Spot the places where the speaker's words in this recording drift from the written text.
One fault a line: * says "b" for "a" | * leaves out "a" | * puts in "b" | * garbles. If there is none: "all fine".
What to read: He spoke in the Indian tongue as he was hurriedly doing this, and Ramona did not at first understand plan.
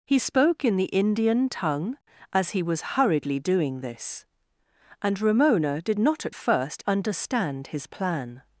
* puts in "his"